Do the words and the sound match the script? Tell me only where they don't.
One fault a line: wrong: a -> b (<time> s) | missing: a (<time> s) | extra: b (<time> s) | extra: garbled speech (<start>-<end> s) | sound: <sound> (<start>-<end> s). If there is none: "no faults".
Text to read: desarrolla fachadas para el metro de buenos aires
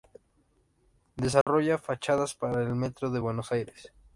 sound: dropout (1.4-1.5 s)